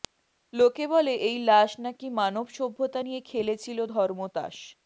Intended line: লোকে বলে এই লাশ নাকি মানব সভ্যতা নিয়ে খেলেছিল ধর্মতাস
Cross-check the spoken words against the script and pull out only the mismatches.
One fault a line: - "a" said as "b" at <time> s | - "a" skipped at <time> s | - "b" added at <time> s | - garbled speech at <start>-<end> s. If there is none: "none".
none